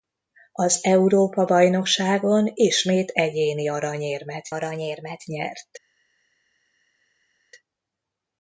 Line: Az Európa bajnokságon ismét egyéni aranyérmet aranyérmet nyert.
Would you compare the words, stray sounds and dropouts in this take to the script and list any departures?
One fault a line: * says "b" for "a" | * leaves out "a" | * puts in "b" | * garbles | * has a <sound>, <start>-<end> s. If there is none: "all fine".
all fine